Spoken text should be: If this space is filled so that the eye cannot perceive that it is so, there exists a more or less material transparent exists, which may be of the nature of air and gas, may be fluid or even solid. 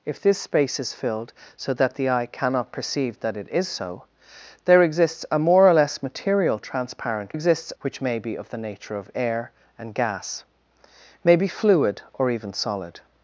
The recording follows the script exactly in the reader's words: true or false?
true